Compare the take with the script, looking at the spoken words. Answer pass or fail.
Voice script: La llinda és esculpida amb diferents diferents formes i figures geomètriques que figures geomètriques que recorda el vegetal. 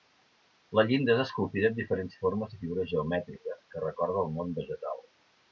fail